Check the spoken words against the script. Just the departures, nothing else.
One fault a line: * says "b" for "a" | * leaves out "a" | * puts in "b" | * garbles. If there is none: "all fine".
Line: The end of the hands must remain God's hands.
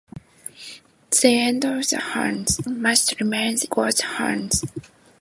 all fine